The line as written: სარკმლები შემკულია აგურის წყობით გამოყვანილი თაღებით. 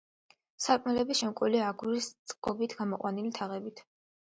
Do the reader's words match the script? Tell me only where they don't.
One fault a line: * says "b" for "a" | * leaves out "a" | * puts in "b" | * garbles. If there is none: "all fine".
all fine